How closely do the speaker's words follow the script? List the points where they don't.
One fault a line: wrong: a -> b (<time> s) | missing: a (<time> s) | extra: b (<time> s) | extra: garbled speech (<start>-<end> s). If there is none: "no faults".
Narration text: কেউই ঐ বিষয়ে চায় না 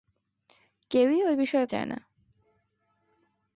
no faults